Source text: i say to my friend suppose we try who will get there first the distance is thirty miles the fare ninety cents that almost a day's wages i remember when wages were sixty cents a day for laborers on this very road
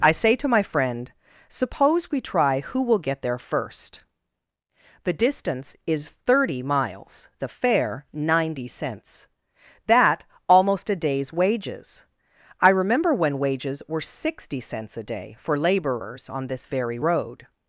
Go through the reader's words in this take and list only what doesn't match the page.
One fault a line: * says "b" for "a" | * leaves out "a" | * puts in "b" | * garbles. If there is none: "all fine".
all fine